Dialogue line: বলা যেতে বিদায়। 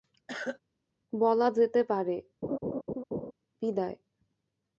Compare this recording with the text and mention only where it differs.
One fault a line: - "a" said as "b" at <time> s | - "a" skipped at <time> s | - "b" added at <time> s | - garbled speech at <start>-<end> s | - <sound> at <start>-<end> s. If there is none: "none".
- cough at 0.3-0.6 s
- "পারে" added at 1.8 s
- laugh at 2.4-3.3 s